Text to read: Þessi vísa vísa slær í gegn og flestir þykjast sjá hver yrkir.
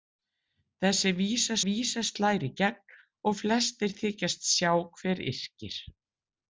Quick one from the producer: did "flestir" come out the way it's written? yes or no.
yes